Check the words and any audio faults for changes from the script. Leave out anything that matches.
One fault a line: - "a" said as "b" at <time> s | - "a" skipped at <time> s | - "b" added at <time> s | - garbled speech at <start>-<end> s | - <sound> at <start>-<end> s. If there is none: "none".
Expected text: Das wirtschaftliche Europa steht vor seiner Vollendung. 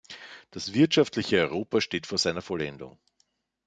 none